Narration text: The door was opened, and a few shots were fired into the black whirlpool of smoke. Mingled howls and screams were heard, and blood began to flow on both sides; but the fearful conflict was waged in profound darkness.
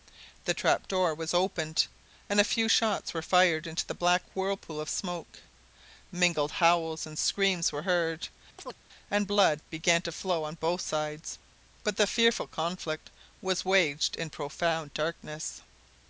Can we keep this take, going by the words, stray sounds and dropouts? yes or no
no